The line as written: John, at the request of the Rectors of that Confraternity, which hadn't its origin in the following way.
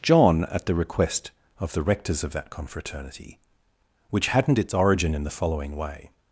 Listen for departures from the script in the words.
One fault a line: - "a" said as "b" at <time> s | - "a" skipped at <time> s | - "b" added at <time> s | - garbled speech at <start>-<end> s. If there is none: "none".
none